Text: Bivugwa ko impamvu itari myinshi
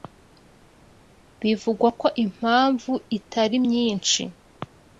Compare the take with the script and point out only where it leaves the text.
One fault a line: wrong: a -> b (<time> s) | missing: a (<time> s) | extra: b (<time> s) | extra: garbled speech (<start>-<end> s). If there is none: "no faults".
no faults